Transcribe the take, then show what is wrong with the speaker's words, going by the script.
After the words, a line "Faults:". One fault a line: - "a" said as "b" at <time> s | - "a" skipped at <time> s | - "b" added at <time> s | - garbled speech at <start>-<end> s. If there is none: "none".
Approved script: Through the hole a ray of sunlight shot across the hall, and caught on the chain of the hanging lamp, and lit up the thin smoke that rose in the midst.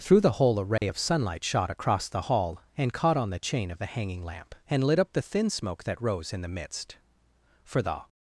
Through the hole a ray of sunlight shot across the hall, and caught on the chain of the hanging lamp, and lit up the thin smoke that rose in the midst. For the
Faults:
- "For the" added at 7.7 s